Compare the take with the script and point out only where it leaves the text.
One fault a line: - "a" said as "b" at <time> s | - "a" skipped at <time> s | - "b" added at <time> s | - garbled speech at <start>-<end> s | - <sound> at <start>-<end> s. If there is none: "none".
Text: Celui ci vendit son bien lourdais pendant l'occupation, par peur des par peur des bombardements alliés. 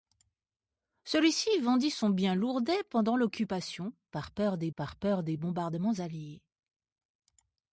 none